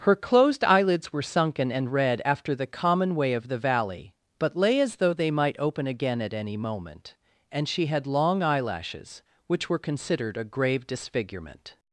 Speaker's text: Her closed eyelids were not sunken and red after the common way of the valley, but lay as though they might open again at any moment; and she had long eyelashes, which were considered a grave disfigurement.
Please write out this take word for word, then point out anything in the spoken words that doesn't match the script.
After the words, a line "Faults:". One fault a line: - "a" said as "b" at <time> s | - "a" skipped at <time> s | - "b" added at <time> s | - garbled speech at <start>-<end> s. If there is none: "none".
Her closed eyelids were sunken and red after the common way of the valley, but lay as though they might open again at any moment; and she had long eyelashes, which were considered a grave disfigurement.
Faults:
- "not" skipped at 1.2 s